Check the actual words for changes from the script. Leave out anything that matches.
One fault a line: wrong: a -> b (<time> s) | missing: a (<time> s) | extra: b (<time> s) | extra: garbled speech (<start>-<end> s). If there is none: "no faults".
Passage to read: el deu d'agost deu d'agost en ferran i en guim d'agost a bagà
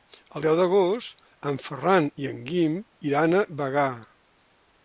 missing: deu d'agost (1.2 s)
wrong: d'agost -> iran (3.1 s)